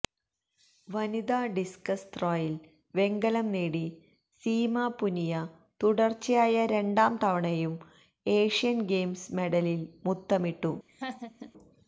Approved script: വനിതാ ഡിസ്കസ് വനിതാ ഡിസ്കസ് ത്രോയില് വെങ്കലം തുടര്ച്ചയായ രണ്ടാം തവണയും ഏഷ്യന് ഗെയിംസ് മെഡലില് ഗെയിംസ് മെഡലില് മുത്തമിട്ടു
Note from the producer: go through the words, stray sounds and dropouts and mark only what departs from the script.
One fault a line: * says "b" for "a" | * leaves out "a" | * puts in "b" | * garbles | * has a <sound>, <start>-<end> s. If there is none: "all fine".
* says "ത്രോയില് വെങ്കലം നേടി സീമ പുനിയ" for "വനിതാ ഡിസ്കസ് ത്രോയില് വെങ്കലം"
* leaves out "ഗെയിംസ് മെഡലില്"
* has a laugh, 10.9-11.5 s